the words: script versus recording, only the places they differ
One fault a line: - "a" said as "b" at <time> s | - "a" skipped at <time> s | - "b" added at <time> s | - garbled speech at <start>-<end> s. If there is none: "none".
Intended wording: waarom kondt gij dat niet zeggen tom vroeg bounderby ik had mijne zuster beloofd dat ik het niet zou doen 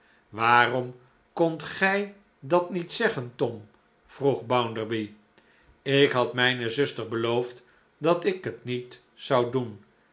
none